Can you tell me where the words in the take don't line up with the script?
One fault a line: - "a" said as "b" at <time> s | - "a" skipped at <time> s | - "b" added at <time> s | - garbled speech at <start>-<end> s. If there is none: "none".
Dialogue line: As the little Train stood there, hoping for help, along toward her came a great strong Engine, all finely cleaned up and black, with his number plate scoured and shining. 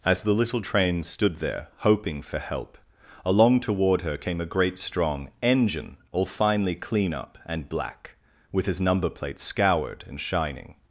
- "cleaned" said as "clean" at 6.7 s